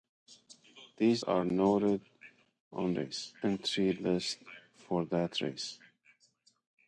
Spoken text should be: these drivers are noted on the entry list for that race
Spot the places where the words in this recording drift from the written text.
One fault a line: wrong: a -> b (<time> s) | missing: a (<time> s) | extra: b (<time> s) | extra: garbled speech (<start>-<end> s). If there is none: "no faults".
missing: drivers (1.2 s)
wrong: the -> race (2.9 s)